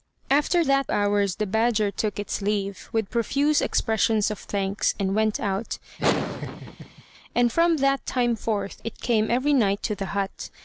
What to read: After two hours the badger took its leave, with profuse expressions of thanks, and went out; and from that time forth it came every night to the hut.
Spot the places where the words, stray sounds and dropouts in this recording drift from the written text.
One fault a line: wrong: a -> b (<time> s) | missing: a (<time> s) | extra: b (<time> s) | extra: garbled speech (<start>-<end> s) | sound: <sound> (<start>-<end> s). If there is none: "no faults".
wrong: two -> that (0.6 s)
sound: laugh (6.0-7.0 s)